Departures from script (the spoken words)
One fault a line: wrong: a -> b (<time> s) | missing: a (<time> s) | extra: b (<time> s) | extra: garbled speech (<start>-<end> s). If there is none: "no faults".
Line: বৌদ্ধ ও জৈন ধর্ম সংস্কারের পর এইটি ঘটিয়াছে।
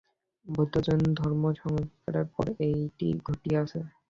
no faults